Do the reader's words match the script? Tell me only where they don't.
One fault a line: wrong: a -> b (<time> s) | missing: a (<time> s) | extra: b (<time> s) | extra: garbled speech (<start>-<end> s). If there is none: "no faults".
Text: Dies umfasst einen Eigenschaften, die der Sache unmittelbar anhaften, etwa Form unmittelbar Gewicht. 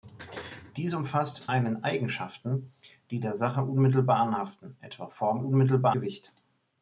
no faults